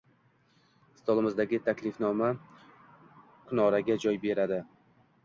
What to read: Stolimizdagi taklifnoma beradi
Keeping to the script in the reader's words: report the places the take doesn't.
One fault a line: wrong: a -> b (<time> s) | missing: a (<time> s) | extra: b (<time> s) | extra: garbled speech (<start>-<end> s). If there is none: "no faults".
extra: kunoraga joy (3.5 s)